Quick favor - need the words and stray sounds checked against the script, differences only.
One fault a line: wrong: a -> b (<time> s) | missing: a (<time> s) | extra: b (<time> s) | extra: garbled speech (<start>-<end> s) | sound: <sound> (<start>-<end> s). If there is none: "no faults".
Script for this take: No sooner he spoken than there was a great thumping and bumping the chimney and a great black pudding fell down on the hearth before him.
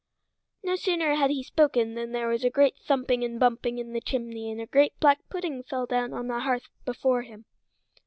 extra: had (1.1 s)
extra: in (3.8 s)